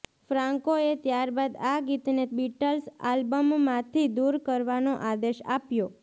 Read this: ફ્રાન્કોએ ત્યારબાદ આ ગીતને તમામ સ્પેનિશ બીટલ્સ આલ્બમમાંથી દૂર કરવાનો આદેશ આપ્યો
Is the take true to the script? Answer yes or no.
no